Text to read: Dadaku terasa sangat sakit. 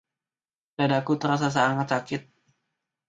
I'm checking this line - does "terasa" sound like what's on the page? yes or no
yes